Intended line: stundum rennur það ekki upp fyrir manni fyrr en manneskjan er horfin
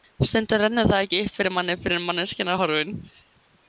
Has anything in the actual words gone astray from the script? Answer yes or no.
no